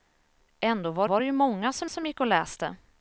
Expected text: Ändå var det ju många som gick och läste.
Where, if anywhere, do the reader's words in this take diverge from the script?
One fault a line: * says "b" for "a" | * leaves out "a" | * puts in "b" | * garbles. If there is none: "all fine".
* puts in "var"
* puts in "som"